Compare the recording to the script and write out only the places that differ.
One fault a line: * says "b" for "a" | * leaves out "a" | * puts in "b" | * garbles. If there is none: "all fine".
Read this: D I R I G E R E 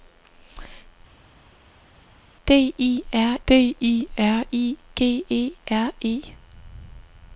* puts in "d I R"